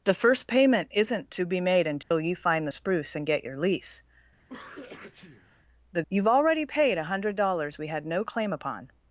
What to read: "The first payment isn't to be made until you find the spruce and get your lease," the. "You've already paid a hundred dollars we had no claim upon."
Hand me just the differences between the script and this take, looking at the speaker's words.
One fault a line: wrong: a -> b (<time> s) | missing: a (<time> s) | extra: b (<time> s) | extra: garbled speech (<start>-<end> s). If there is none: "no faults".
no faults